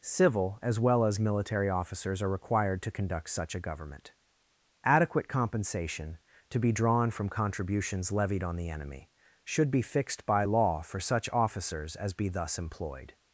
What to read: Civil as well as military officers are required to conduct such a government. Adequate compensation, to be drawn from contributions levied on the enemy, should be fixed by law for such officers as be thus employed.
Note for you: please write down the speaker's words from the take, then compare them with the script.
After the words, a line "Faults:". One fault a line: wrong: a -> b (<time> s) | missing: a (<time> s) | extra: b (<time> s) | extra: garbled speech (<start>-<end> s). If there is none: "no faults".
Civil as well as military officers are required to conduct such a government. Adequate compensation, to be drawn from contributions levied on the enemy, should be fixed by law for such officers as be thus employed.
Faults:
no faults